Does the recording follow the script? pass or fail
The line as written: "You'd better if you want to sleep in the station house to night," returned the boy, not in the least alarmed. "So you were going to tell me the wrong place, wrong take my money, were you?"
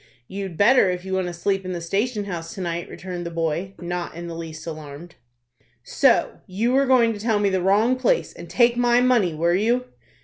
fail